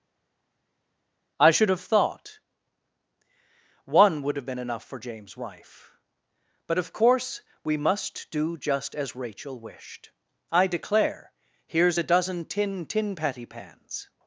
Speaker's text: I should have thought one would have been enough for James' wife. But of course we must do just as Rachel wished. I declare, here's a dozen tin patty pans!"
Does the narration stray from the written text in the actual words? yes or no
yes